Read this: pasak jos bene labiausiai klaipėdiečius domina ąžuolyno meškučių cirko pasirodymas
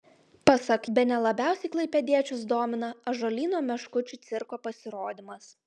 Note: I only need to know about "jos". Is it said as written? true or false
false